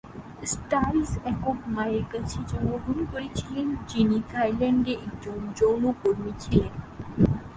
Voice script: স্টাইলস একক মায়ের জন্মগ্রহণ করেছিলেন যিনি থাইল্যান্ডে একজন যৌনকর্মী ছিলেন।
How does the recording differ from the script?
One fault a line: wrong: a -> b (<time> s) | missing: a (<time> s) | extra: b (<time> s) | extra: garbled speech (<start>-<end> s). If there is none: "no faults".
extra: কাছে (2.1 s)